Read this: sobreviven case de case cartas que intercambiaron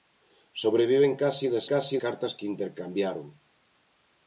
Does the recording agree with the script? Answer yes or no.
yes